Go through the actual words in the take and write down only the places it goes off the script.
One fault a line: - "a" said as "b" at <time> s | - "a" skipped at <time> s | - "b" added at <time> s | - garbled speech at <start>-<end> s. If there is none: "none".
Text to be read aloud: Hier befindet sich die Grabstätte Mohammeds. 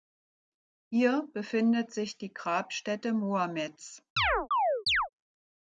none